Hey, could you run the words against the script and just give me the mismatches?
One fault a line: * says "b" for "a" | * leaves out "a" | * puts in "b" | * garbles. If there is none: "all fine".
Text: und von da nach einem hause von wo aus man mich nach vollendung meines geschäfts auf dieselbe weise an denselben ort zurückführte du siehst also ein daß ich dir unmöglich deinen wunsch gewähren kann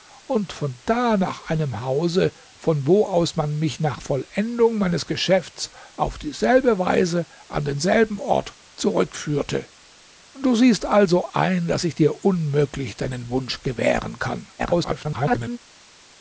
* garbles